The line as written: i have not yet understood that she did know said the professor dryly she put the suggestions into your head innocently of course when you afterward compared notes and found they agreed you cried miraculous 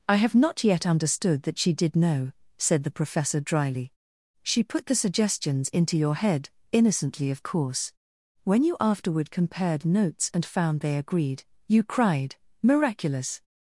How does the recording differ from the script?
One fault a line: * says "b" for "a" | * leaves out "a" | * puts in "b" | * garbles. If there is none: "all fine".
all fine